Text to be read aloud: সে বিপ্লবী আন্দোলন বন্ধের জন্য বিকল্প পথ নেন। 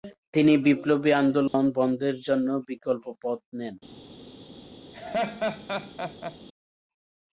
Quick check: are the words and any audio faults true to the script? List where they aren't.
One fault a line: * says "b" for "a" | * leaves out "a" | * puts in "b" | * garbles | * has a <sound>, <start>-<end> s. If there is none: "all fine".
* says "তিনি" for "সে"
* has a dropout, 1.5-1.5 s
* has a laugh, 4.9-6.4 s